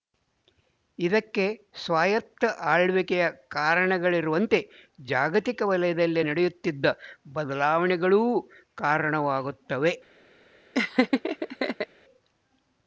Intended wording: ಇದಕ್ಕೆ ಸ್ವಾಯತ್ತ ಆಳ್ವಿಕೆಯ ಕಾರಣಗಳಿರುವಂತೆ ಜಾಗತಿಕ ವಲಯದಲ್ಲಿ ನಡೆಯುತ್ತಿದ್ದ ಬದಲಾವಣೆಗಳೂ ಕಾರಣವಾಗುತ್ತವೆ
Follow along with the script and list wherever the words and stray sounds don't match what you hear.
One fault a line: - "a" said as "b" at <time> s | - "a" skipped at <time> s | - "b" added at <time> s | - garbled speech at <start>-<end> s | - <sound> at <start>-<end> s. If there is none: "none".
- laugh at 10.7-11.9 s